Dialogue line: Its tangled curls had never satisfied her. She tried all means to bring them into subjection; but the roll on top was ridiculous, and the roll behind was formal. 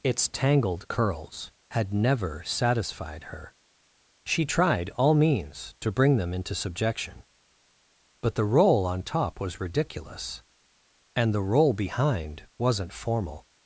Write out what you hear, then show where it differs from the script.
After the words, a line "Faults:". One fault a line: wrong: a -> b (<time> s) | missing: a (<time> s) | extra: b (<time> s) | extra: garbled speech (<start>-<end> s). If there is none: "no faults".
Its tangled curls had never satisfied her. She tried all means to bring them into subjection; but the roll on top was ridiculous, and the roll behind wasn't formal.
Faults:
wrong: was -> wasn't (12.6 s)